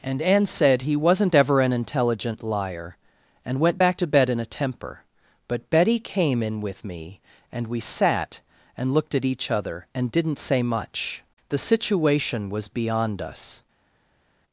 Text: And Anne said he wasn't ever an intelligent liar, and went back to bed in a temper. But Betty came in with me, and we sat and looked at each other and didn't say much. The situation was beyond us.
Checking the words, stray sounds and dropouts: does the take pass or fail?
pass